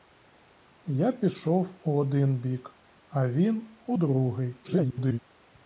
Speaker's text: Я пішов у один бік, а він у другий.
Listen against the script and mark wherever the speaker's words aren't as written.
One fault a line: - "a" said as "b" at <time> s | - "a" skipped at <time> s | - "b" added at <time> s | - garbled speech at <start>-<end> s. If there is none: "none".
- garbled speech at 4.6-5.2 s